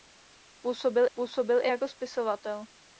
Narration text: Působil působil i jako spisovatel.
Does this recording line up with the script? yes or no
yes